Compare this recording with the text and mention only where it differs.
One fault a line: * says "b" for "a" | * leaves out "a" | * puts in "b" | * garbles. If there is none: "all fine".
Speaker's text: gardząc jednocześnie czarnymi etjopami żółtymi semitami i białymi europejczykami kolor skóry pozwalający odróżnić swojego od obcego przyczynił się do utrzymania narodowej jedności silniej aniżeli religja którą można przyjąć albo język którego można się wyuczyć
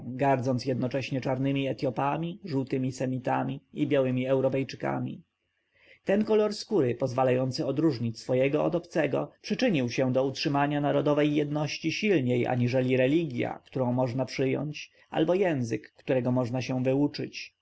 * puts in "ten"